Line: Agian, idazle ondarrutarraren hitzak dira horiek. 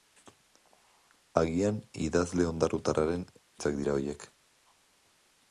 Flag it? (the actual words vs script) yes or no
no